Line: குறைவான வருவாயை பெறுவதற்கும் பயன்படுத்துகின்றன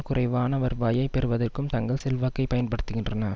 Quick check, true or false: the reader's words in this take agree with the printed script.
false